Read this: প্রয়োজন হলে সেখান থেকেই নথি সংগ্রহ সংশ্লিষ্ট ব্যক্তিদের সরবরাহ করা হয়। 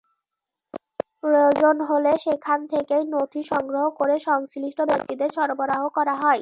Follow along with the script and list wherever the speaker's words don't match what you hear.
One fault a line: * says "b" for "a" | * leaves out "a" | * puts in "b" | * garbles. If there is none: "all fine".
* puts in "করে"